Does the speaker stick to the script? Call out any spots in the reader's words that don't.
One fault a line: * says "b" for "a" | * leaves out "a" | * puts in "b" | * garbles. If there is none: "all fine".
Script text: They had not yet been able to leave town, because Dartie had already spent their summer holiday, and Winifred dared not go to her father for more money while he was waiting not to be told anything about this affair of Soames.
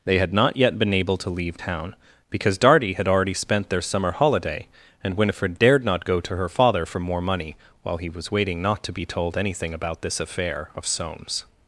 all fine